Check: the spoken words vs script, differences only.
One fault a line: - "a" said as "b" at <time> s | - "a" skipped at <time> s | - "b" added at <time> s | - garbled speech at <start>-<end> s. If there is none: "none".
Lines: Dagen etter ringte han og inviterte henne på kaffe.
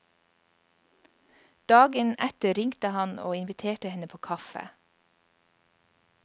none